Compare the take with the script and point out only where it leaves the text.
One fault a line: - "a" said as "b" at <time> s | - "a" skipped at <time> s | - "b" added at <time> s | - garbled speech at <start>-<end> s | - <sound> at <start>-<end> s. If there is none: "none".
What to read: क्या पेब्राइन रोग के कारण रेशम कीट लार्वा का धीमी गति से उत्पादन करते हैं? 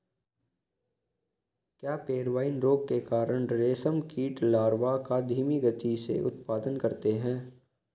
none